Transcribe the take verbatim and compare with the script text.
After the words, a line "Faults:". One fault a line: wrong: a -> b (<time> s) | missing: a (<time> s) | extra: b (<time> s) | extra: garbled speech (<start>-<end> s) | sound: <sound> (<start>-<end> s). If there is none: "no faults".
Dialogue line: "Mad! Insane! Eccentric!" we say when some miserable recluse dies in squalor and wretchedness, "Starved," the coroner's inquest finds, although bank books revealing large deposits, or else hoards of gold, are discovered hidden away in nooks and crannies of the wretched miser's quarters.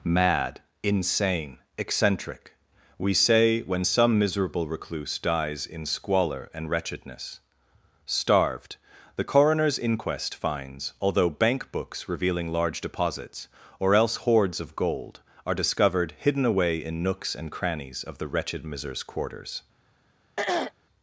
"Mad! Insane! Eccentric!" we say when some miserable recluse dies in squalor and wretchedness, "Starved," the coroner's inquest finds, although bank books revealing large deposits, or else hoards of gold, are discovered hidden away in nooks and crannies of the wretched miser's quarters.
Faults:
sound: throat clearing (20.4-20.7 s)